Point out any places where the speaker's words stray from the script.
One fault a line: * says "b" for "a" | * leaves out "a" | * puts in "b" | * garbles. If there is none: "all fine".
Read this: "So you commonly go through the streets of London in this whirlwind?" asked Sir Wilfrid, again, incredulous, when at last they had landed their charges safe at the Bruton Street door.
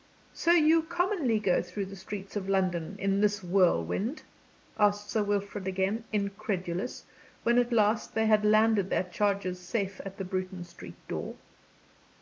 all fine